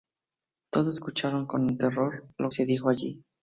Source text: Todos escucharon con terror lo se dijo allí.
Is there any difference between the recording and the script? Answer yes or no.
no